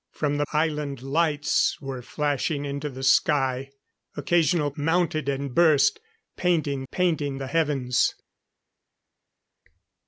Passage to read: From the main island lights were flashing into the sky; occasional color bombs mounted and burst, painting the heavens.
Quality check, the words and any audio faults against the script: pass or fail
fail